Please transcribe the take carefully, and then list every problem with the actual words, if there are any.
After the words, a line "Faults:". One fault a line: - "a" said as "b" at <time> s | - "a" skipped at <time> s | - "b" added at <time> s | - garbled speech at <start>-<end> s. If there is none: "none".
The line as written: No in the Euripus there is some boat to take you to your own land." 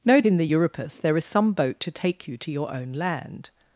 No in the Euripus there is some boat to take you to your own land."
Faults:
none